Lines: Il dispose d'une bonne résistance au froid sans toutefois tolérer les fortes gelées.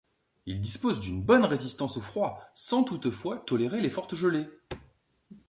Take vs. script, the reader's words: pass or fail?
pass